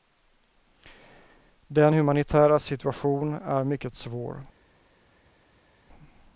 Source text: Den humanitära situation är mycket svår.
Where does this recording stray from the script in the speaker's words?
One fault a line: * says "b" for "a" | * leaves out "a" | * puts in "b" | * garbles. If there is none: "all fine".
all fine